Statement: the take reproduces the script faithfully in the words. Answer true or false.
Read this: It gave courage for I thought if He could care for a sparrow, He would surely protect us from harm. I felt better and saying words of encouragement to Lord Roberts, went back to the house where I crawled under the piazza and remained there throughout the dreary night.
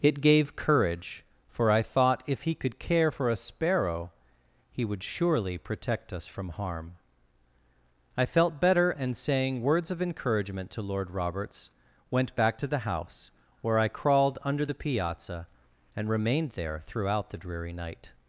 true